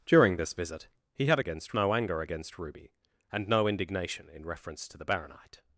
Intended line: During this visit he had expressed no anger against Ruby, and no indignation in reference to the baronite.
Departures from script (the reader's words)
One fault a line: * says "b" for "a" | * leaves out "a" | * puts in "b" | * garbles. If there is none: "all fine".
* says "against" for "expressed"